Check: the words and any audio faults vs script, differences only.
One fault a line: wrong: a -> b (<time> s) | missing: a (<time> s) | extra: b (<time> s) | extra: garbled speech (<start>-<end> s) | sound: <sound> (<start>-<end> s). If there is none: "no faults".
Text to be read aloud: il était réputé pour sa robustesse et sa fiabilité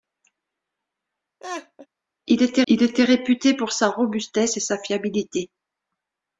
sound: laugh (1.4-1.9 s)
extra: il était (2.7 s)